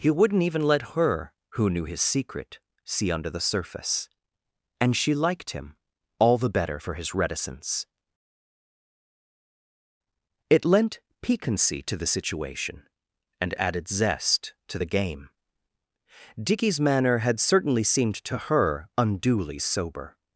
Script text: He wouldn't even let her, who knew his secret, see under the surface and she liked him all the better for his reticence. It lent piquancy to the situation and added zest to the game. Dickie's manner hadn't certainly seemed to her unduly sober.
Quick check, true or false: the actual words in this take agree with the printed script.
false